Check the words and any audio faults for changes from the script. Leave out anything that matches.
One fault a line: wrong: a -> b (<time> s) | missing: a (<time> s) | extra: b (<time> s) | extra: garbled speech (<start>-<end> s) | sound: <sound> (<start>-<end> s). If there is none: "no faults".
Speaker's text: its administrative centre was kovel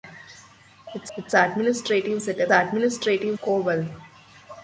extra: its (1.2 s)
wrong: was -> administrative (2.5 s)